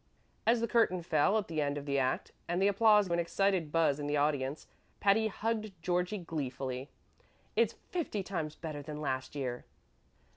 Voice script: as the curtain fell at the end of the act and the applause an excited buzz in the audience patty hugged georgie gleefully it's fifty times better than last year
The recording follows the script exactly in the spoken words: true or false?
true